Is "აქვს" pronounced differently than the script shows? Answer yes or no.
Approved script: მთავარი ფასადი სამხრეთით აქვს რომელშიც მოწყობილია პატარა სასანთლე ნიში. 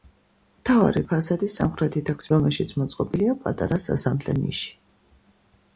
no